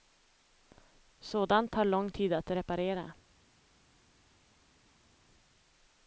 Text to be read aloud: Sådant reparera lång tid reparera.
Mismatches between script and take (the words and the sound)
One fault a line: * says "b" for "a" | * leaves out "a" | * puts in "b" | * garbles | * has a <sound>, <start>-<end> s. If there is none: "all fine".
* says "tar" for "reparera"
* puts in "att"